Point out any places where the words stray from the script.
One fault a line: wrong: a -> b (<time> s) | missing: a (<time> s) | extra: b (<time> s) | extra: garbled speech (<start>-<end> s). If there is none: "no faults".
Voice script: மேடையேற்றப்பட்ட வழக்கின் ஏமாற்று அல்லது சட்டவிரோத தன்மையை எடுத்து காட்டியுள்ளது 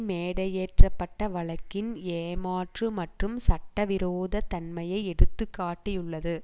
wrong: அல்லது -> மற்றும் (3.0 s)